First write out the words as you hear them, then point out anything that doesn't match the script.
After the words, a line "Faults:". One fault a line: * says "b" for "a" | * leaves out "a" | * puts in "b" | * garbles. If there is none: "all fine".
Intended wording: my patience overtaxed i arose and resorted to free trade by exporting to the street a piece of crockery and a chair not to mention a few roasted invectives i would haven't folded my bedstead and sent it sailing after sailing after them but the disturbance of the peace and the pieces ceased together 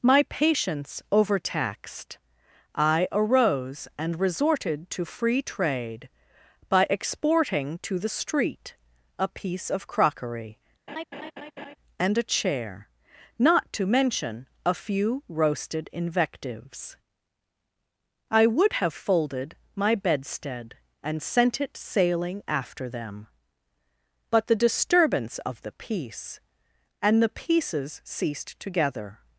my patience overtaxed i arose and resorted to free trade by exporting to the street a piece of crockery and a chair not to mention a few roasted invectives i would have folded my bedstead and sent it sailing after them but the disturbance of the peace and the pieces ceased together
Faults:
* says "have" for "haven't"
* leaves out "sailing after"